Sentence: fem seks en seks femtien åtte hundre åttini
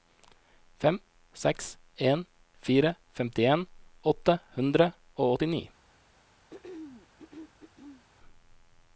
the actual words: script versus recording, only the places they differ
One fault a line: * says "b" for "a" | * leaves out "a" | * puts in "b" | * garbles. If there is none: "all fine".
* says "fire" for "seks"
* puts in "og"